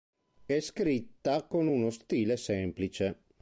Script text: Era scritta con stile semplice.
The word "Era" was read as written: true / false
false